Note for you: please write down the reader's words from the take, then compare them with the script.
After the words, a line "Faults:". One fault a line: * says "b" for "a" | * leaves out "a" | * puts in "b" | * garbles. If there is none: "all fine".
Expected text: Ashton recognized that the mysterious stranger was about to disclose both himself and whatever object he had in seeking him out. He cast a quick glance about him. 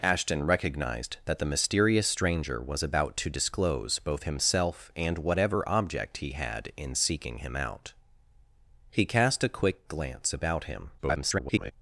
Ashton recognized that the mysterious stranger was about to disclose both himself and whatever object he had in seeking him out. He cast a quick glance about him. [garbled]
Faults:
* garbles